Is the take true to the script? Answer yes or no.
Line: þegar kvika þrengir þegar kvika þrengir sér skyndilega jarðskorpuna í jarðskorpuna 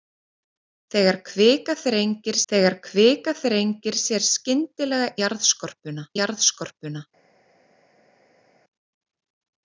yes